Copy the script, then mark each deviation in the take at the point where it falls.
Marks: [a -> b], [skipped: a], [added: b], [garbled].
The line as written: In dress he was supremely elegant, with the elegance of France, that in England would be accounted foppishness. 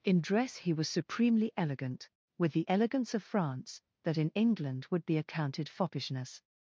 In dress he was supremely elegant, with the elegance of France, that in England would be accounted foppishness.